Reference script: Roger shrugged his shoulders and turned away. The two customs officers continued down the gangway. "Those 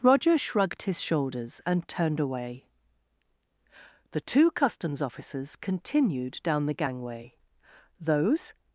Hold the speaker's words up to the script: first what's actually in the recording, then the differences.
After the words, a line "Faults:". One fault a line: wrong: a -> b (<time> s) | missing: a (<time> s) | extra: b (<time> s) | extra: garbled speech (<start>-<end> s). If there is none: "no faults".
Roger shrugged his shoulders and turned away. The two customs officers continued down the gangway. "Those
Faults:
no faults